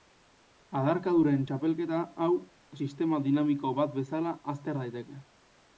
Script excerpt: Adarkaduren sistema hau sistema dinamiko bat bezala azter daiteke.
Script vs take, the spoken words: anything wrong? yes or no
yes